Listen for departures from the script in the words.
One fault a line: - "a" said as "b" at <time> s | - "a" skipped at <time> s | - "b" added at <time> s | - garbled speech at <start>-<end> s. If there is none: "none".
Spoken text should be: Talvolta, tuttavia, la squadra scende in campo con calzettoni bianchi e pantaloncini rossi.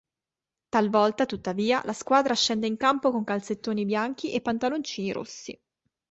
none